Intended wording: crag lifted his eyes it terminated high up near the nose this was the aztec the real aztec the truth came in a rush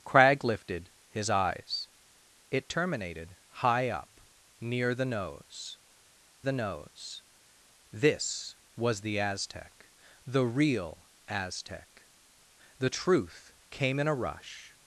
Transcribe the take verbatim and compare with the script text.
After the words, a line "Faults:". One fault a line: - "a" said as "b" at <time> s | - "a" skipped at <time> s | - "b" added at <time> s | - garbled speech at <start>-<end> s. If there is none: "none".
crag lifted his eyes it terminated high up near the nose the nose this was the aztec the real aztec the truth came in a rush
Faults:
- "the nose" added at 6.4 s